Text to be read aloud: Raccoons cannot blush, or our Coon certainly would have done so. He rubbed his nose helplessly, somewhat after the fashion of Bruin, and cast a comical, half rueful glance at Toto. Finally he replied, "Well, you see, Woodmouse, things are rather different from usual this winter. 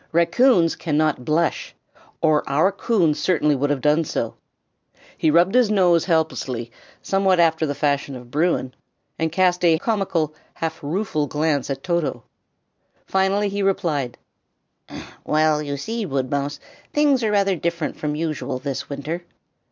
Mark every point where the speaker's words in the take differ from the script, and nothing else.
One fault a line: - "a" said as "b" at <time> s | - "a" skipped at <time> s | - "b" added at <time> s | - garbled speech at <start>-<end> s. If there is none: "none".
none